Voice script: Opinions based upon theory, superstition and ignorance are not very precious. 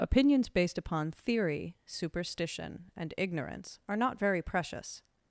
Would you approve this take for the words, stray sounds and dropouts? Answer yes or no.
yes